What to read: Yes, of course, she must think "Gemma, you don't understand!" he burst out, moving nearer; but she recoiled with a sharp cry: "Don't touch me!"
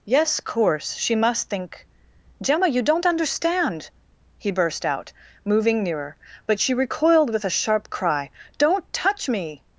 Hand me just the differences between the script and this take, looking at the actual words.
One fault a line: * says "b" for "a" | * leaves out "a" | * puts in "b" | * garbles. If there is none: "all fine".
* leaves out "of"